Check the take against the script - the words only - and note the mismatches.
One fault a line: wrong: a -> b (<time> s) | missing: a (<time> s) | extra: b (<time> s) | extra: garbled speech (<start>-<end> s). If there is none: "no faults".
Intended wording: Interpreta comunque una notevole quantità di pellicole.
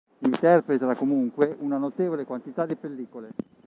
no faults